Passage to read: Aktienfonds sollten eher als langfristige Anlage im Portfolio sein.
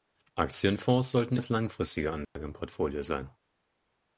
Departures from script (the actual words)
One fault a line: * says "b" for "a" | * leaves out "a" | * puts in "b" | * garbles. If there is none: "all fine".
* leaves out "eher"